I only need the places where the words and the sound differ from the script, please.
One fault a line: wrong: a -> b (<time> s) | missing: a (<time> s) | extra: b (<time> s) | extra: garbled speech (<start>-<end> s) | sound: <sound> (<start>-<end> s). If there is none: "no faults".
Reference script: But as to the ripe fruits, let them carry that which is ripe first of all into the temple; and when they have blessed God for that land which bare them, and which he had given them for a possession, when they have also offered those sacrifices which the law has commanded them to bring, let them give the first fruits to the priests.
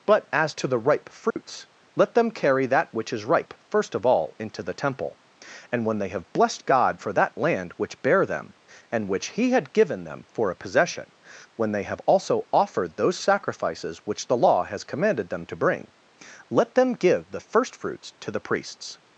sound: dropout (1.3-1.4 s)